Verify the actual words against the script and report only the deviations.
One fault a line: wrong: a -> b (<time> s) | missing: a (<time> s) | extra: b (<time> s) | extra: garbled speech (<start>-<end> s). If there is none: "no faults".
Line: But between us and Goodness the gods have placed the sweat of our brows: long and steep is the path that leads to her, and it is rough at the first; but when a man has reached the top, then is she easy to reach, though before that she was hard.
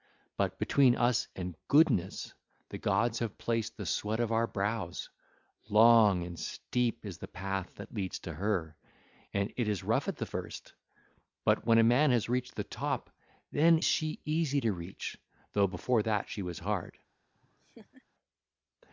missing: is (13.8 s)